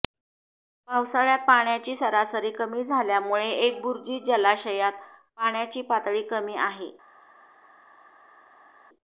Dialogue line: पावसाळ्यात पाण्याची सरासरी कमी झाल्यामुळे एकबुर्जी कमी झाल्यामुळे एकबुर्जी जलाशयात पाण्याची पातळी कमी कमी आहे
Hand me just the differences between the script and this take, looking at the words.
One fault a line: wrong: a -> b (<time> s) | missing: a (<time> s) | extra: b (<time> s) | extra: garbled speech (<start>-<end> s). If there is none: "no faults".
missing: कमी झाल्यामुळे एकबुर्जी (4.2 s)
missing: कमी (6.6 s)